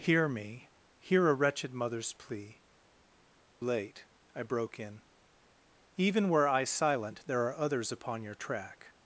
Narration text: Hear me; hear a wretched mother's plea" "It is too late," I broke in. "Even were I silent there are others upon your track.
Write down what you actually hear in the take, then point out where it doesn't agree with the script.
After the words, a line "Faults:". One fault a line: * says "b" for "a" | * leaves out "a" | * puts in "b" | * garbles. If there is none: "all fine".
Hear me; hear a wretched mother's plea" "Late," I broke in. "Even were I silent there are others upon your track.
Faults:
* leaves out "It is too"